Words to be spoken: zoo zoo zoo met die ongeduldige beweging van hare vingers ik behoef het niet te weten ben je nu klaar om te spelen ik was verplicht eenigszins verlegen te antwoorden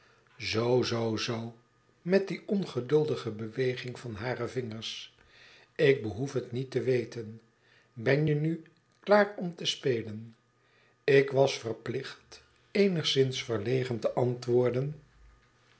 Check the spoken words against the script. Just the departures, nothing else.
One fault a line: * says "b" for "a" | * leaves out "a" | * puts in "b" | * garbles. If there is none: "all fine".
all fine